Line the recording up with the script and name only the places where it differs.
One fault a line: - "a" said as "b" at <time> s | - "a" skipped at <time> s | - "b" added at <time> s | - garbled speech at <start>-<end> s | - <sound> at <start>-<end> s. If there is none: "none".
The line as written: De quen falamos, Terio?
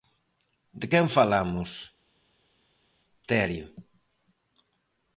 none